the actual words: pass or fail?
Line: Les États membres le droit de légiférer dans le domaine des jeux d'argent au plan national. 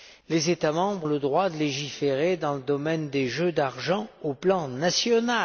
pass